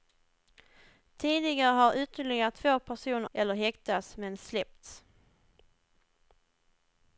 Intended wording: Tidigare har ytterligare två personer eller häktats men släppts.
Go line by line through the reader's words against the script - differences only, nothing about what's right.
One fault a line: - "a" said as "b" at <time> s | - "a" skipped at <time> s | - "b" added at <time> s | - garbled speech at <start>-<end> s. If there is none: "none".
none